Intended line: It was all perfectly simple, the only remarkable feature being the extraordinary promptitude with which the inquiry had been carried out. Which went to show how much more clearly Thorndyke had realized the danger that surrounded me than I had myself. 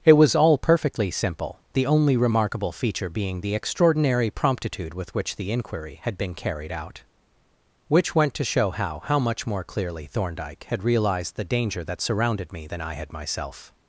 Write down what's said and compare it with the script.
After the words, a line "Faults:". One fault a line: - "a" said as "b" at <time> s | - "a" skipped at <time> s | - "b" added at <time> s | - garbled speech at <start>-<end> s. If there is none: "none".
It was all perfectly simple, the only remarkable feature being the extraordinary promptitude with which the inquiry had been carried out. Which went to show how how much more clearly Thorndyke had realized the danger that surrounded me than I had myself.
Faults:
- "how" added at 9.1 s